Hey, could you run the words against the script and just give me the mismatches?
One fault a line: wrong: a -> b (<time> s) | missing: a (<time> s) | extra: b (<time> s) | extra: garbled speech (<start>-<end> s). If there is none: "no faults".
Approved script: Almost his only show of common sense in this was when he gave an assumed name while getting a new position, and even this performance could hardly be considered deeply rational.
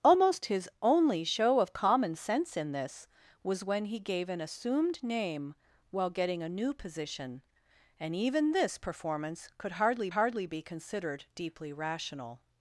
extra: hardly (10.1 s)